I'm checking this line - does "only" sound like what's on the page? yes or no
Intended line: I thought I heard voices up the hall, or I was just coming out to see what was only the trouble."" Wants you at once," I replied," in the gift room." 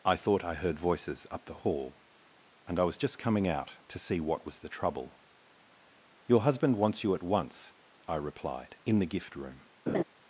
no